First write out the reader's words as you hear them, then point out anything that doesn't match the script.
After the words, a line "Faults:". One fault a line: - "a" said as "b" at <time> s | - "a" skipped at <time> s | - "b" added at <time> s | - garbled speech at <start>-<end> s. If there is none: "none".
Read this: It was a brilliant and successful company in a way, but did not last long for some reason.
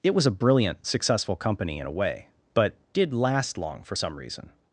It was a brilliant successful company in a way, but did last long for some reason.
Faults:
- "and" skipped at 0.8 s
- "not" skipped at 3.1 s